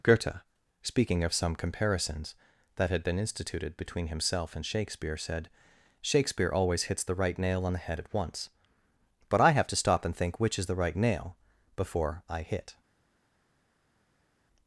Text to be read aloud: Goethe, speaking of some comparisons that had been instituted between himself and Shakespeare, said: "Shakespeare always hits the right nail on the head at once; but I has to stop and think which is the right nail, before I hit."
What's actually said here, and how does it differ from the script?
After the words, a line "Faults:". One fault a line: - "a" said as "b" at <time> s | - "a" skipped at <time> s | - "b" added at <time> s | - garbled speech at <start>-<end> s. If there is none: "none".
Goethe, speaking of some comparisons that had been instituted between himself and Shakespeare, said: "Shakespeare always hits the right nail on the head at once; but I have to stop and think which is the right nail, before I hit."
Faults:
- "has" said as "have" at 9.5 s